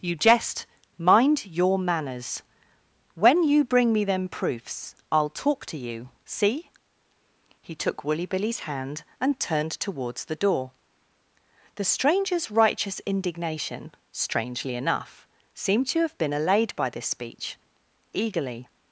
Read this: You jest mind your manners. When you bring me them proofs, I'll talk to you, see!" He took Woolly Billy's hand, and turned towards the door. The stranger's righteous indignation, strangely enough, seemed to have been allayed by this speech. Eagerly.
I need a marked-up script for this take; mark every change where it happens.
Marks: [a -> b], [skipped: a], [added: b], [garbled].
You jest mind your manners. When you bring me them proofs, I'll talk to you, see!" He took Woolly Billy's hand, and turned towards the door. The stranger's righteous indignation, strangely enough, seemed to have been allayed by this speech. Eagerly.